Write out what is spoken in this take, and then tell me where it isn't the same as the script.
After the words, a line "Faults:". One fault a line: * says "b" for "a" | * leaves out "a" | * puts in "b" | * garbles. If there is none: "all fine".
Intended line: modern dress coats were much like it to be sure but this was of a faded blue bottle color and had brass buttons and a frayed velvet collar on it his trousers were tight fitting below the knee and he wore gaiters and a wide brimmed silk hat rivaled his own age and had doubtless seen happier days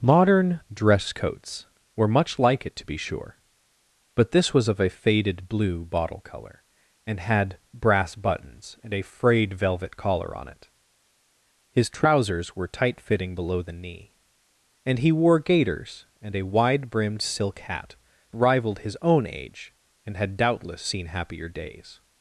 modern dress coats were much like it to be sure but this was of a faded blue bottle color and had brass buttons and a frayed velvet collar on it his trousers were tight fitting below the knee and he wore gaiters and a wide brimmed silk hat rivaled his own age and had doubtless seen happier days
Faults:
all fine